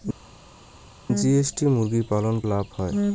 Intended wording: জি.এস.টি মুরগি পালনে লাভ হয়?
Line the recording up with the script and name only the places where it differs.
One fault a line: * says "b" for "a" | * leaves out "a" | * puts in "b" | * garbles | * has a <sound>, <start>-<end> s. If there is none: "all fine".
all fine